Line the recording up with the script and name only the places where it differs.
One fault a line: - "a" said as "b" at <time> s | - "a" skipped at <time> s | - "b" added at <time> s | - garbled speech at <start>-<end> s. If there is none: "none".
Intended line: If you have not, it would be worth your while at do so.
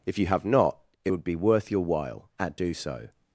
none